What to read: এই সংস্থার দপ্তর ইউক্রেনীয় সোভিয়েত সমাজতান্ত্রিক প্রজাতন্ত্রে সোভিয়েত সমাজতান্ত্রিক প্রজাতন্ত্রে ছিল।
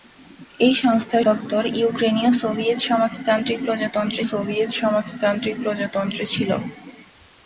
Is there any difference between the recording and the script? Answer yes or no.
no